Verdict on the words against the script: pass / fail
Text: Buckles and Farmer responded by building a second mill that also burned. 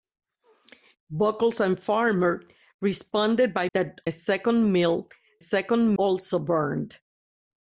fail